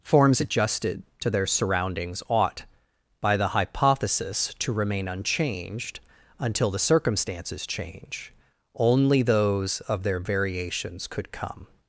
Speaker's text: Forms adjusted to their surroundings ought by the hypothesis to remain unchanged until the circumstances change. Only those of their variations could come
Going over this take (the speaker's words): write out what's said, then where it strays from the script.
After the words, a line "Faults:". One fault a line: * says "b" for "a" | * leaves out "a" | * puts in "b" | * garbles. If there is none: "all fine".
Forms adjusted to their surroundings ought by the hypothesis to remain unchanged until the circumstances change. Only those of their variations could come
Faults:
all fine